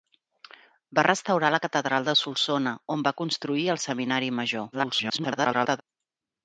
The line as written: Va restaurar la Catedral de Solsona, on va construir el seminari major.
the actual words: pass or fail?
fail